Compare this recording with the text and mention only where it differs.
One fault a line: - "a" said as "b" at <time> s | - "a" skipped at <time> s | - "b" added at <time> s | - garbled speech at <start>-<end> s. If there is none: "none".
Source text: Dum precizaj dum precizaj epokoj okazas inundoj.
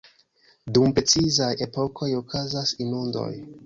- "dum precizaj" skipped at 1.5 s